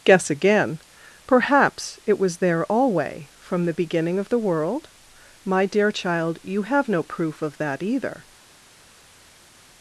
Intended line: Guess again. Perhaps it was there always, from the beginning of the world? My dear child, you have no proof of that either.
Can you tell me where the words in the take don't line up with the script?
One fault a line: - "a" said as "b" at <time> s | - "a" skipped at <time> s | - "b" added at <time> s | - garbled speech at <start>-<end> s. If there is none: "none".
- "always" said as "alway" at 2.6 s